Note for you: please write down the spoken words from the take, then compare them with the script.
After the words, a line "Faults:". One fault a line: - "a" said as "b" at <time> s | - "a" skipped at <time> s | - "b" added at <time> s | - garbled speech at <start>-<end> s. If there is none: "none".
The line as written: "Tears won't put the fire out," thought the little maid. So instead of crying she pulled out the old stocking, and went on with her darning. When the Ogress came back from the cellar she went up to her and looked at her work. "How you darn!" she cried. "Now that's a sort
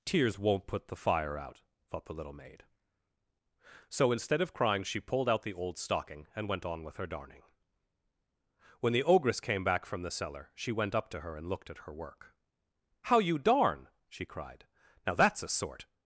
"Tears won't put the fire out," thought the little maid. So instead of crying she pulled out the old stocking, and went on with her darning. When the Ogress came back from the cellar she went up to her and looked at her work. "How you darn!" she cried. "Now that's a sort
Faults:
none